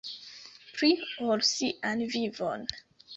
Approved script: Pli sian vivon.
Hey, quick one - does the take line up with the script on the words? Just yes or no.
no